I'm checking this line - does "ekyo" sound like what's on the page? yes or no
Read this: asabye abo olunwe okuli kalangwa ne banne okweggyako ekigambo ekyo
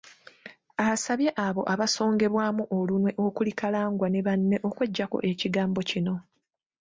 no